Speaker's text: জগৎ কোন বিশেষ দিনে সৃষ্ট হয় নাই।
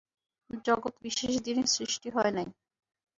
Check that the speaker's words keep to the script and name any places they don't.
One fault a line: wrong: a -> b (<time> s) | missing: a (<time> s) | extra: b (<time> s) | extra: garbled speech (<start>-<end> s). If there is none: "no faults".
missing: কোন (0.9 s)